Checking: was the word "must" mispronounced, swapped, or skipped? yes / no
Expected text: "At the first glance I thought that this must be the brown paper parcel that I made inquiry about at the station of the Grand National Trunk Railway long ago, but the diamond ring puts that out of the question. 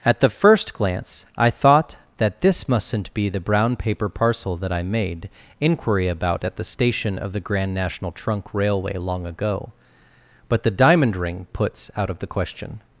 yes